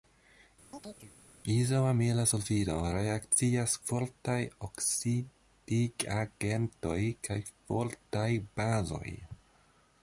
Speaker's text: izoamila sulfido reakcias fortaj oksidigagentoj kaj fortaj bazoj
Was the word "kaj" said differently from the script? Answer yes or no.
no